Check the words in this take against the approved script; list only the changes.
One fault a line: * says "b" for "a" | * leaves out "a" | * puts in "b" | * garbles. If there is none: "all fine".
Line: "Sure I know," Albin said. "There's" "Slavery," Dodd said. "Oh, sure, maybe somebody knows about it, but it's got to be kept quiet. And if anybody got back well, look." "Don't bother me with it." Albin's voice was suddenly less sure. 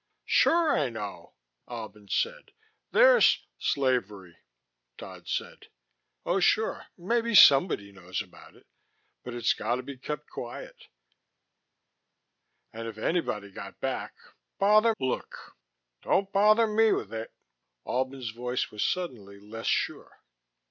* says "bother" for "well"